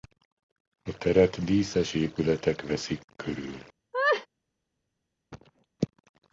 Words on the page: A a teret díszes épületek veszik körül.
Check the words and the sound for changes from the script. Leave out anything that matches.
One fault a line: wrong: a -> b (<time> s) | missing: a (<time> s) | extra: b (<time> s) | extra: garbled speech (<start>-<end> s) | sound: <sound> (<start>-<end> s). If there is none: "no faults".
missing: a (1.0 s)
sound: laugh (3.9-4.3 s)
sound: cough (5.3-5.7 s)